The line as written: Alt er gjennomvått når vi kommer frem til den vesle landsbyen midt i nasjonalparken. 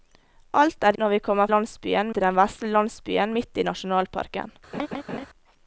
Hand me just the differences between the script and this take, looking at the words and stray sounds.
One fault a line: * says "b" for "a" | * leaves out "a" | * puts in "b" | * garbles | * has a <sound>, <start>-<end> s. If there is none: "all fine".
* leaves out "gjennomvått"
* says "landsbyen" for "frem"
* has a laugh, 4.7-5.3 s